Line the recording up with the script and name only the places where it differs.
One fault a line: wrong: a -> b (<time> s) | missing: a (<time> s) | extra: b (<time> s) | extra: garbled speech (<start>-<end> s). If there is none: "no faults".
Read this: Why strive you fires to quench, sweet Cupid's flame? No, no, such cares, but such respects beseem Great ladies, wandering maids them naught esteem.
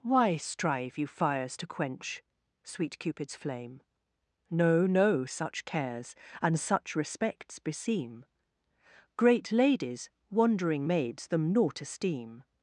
wrong: but -> and (6.4 s)